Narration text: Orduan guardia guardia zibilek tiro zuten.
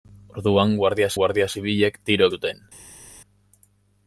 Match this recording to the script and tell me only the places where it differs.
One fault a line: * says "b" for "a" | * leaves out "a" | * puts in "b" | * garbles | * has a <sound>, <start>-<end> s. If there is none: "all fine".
all fine